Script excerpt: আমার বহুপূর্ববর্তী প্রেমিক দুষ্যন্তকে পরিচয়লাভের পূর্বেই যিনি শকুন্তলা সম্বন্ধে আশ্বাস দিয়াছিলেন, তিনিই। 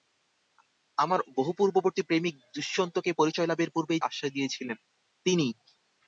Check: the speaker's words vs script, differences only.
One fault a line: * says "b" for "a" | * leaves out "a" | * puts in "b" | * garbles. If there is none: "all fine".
* leaves out "যিনি শকুন্তলা সম্বন্ধে"